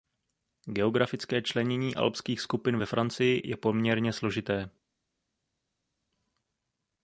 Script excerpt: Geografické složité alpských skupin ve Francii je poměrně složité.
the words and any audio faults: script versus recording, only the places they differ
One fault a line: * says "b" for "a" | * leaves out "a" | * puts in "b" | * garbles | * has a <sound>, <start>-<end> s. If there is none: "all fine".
* says "členění" for "složité"